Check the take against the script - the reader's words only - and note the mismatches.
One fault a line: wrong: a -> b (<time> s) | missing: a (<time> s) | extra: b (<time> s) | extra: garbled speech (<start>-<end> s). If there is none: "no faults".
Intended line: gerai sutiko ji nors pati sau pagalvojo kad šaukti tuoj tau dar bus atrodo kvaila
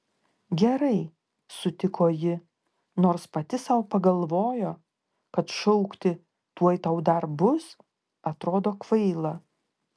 no faults